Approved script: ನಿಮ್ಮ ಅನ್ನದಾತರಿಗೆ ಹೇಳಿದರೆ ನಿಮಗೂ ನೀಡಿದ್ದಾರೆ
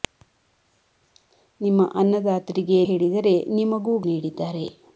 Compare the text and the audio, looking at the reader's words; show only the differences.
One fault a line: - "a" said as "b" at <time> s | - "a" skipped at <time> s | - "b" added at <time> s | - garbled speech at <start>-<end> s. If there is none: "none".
none